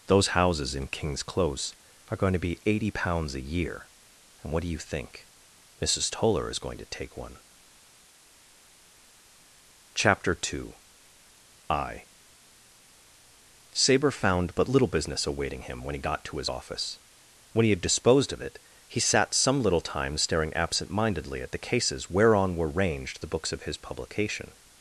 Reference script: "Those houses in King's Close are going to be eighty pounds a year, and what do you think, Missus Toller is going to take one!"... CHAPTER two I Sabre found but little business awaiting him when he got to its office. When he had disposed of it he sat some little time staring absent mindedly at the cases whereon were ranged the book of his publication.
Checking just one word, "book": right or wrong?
wrong